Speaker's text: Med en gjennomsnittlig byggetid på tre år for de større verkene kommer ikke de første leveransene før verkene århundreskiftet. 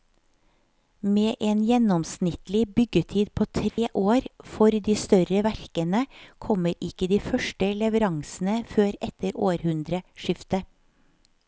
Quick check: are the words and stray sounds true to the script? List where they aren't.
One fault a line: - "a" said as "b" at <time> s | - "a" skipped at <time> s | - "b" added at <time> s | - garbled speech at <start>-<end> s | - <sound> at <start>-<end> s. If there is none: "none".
- dropout at 3.7-3.8 s
- "verkene" said as "etter" at 9.1 s